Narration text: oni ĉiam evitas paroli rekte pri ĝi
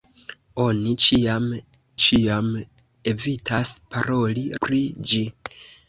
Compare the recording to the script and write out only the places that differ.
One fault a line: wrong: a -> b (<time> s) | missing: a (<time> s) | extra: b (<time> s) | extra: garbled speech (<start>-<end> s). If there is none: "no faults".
extra: ĉiam (2.1 s)
missing: rekte (4.4 s)